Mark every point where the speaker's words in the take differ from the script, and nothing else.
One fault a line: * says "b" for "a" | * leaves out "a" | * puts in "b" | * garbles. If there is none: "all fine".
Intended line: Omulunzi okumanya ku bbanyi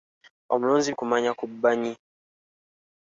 all fine